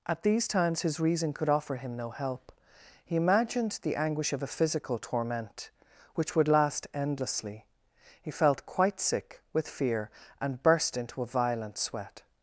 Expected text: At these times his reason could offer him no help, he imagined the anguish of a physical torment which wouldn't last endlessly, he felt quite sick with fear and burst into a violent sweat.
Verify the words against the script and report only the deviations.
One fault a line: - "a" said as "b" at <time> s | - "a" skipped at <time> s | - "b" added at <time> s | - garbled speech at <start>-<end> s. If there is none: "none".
- "wouldn't" said as "would" at 6.4 s